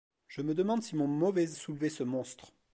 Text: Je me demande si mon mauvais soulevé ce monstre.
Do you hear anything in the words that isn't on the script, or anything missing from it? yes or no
no